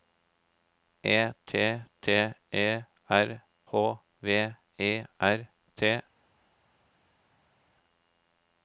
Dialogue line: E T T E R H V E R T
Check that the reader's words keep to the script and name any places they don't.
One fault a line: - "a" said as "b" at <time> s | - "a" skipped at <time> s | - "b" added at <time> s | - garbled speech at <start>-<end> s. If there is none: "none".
none